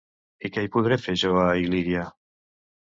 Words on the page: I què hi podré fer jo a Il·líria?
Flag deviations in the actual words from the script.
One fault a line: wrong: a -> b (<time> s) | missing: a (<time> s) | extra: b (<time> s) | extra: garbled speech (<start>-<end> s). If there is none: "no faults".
no faults